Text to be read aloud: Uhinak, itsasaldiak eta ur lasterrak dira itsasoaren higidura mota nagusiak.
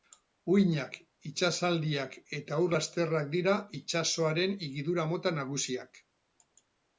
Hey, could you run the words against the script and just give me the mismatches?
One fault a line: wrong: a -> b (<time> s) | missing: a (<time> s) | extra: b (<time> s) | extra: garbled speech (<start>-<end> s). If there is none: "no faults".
no faults